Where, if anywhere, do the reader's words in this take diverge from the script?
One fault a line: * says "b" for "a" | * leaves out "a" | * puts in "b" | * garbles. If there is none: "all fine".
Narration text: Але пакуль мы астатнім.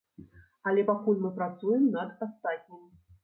* puts in "працуем над"